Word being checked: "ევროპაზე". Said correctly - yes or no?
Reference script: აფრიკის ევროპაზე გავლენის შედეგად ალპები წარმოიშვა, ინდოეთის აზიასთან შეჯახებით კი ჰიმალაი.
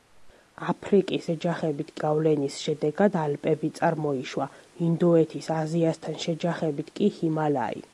no